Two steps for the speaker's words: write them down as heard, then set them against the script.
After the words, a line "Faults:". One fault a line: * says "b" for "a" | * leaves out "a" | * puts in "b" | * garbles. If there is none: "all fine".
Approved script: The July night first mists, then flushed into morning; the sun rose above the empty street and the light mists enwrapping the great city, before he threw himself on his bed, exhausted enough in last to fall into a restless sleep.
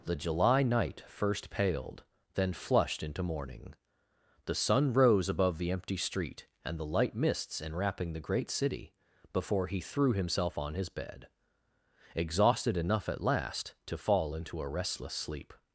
The July night first paled, then flushed into morning; the sun rose above the empty street and the light mists enwrapping the great city, before he threw himself on his bed, exhausted enough at last to fall into a restless sleep.
Faults:
* says "paled" for "mists"
* says "at" for "in"